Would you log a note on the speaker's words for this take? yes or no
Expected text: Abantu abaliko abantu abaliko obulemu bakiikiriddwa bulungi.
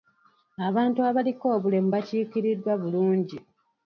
yes